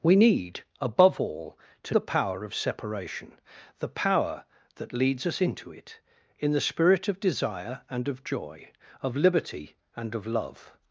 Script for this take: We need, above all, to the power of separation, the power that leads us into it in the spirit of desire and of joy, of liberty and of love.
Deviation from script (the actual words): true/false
false